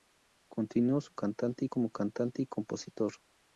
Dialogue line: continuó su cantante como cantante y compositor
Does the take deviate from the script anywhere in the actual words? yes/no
no